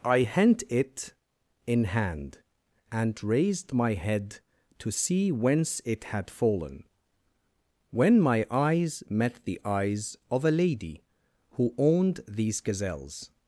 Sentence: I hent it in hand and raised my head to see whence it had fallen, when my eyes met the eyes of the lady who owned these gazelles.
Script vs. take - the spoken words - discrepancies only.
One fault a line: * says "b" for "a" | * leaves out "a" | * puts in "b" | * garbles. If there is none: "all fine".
* says "a" for "the"